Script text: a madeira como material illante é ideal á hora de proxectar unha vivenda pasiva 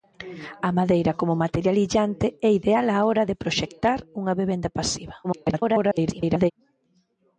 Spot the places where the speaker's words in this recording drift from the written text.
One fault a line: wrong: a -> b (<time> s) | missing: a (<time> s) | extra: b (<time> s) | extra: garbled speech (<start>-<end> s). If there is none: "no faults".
extra: garbled speech (5.2-6.5 s)